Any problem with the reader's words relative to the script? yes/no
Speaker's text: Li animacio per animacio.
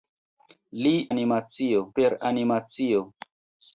no